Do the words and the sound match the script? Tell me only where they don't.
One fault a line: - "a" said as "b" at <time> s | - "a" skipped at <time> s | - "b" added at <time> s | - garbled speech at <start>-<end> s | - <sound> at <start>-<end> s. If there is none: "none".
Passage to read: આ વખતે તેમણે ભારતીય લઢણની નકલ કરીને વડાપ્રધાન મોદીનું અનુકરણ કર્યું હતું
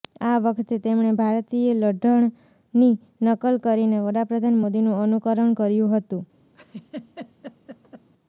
- laugh at 6.5-8.1 s